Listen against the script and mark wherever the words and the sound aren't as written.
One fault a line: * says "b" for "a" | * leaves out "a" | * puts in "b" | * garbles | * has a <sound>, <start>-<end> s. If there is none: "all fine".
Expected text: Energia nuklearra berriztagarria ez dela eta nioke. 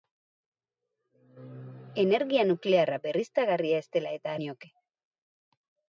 all fine